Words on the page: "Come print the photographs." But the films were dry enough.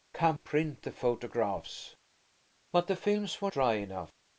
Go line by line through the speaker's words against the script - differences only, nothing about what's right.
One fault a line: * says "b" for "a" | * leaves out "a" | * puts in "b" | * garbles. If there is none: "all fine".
all fine